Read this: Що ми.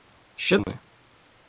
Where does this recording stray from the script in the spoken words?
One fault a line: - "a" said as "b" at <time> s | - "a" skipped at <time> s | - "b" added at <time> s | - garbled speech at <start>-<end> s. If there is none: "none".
none